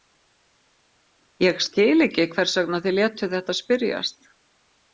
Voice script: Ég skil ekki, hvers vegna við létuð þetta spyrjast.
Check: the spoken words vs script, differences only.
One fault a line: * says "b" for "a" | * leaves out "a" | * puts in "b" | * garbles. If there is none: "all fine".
* says "þið" for "við"